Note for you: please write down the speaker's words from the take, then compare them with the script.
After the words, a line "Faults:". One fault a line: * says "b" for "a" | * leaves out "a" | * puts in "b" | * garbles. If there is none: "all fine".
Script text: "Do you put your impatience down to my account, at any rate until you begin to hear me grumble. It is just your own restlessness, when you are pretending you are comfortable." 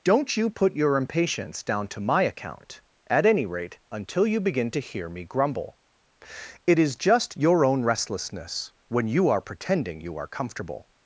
"Don't you put your impatience down to my account, at any rate until you begin to hear me grumble. It is just your own restlessness, when you are pretending you are comfortable."
Faults:
* says "Don't" for "Do"